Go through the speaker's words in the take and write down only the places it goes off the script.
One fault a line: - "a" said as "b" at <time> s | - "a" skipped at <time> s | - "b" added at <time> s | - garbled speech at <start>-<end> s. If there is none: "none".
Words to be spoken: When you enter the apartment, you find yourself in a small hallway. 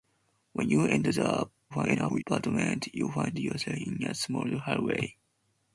- garbled speech at 1.7-2.2 s